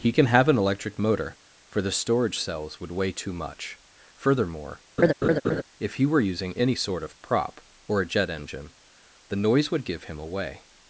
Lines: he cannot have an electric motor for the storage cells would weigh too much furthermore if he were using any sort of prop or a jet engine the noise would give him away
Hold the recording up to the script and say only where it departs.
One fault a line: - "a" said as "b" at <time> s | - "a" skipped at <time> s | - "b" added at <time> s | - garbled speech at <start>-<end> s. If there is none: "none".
- "cannot" said as "can" at 0.1 s